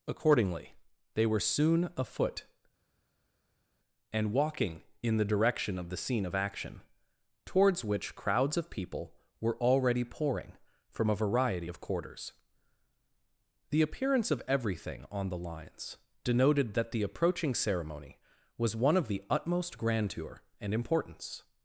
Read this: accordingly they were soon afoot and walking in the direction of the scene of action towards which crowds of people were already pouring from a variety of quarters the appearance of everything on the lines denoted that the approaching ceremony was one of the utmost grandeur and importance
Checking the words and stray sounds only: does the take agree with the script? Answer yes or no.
yes